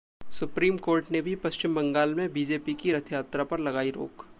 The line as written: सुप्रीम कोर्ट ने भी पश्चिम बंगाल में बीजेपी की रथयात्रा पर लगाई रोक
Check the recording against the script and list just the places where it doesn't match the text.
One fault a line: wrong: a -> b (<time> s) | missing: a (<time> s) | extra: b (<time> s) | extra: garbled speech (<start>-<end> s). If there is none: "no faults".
no faults